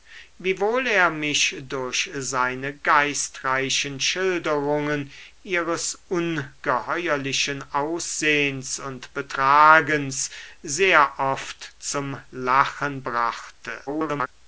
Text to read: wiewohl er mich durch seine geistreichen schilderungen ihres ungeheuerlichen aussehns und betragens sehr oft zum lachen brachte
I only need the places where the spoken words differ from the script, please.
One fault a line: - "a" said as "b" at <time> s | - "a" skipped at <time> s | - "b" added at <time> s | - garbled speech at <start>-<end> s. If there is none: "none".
- garbled speech at 13.9-14.3 s